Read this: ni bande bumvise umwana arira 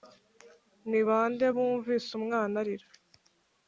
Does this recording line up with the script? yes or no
yes